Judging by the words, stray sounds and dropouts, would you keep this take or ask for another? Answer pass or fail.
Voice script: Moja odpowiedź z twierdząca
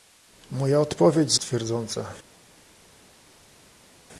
pass